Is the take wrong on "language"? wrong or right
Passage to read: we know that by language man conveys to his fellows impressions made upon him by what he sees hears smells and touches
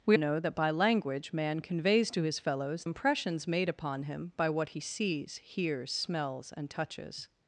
right